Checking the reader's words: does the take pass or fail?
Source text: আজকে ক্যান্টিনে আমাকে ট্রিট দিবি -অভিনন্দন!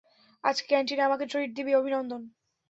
pass